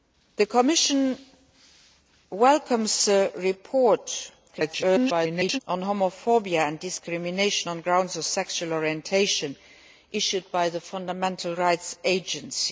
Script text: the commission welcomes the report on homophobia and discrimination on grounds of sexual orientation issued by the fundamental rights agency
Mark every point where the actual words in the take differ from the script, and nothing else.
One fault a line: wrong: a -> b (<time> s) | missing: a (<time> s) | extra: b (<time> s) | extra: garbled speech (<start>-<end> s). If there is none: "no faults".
extra: garbled speech (4.5-5.6 s)